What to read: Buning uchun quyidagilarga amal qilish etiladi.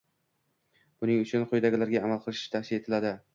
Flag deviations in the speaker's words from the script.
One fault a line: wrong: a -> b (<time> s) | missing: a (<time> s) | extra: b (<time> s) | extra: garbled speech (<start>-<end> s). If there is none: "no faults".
extra: tavsiya (2.6 s)